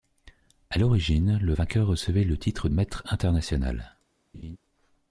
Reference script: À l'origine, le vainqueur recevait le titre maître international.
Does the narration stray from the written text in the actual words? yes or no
no